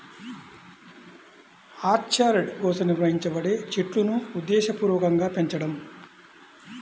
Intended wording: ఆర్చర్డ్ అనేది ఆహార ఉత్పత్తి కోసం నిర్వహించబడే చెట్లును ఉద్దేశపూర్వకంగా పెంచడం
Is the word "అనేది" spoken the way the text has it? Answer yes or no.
no